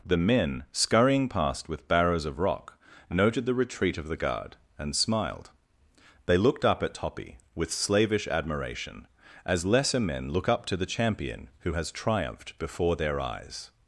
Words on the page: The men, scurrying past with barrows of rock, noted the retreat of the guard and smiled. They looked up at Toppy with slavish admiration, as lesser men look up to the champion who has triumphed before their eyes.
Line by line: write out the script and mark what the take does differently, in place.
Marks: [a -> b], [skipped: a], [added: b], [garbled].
The men, scurrying past with barrows of rock, noted the retreat of the guard and smiled. They looked up at Toppy with slavish admiration, as lesser men look up to the champion who has triumphed before their eyes.